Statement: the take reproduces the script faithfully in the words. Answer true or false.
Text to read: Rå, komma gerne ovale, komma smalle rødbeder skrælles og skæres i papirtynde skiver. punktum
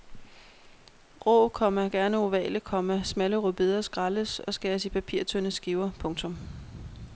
true